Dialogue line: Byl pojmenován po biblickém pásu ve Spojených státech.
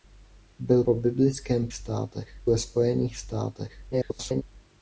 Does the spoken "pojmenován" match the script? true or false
false